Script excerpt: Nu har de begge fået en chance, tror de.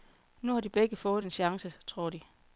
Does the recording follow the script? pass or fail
pass